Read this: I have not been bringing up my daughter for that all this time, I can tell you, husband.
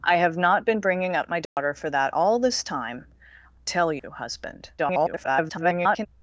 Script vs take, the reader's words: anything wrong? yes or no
yes